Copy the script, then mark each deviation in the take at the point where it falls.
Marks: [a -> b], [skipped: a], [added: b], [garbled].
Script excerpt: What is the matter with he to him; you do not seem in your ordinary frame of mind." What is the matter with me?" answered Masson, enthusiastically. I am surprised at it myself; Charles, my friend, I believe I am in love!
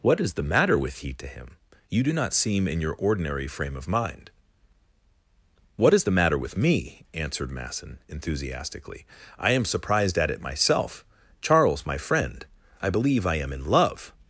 What is the matter with he to him; you do not seem in your ordinary frame of mind." What is the matter with me?" answered Masson, enthusiastically. I am surprised at it myself; Charles, my friend, I believe I am in love!